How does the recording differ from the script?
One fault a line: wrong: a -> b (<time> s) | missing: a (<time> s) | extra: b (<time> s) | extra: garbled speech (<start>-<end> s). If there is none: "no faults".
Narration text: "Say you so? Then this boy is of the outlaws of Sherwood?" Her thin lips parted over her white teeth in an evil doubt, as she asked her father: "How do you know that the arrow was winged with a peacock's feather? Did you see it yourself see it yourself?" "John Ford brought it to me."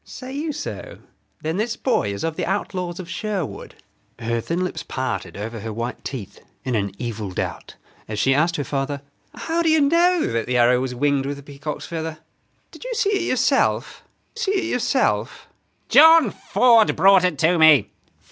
no faults